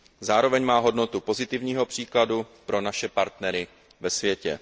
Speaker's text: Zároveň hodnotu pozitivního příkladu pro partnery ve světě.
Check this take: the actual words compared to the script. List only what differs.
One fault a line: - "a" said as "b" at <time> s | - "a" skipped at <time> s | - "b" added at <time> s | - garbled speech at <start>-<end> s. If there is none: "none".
- "má" added at 0.7 s
- "naše" added at 2.8 s